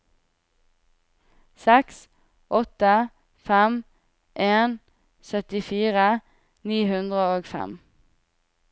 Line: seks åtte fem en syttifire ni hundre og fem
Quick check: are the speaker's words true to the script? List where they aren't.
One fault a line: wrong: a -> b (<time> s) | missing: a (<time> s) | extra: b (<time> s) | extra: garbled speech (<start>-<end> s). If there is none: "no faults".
no faults